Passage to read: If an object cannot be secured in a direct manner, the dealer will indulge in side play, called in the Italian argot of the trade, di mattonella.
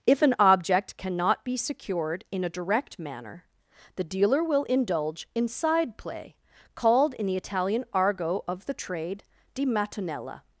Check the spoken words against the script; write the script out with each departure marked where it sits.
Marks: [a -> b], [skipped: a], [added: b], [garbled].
If an object cannot be secured in a direct manner, the dealer will indulge in side play, called in the Italian argot of the trade, di mattonella.